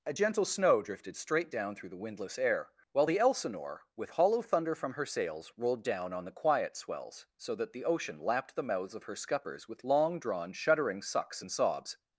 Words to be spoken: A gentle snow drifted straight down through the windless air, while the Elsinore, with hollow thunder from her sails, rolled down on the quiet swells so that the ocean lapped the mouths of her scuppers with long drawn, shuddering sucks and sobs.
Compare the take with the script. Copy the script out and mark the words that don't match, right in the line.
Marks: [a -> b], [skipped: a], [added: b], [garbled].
A gentle snow drifted straight down through the windless air, while the Elsinore, with hollow thunder from her sails, rolled down on the quiet swells so that the ocean lapped the mouths of her scuppers with long drawn, shuddering sucks and sobs.